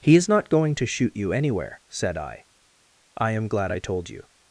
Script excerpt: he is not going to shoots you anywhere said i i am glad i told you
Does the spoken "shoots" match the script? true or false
false